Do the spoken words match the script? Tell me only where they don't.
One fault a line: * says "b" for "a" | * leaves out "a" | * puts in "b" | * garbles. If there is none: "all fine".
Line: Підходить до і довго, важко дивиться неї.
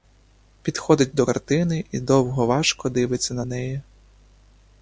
* puts in "картини"
* puts in "на"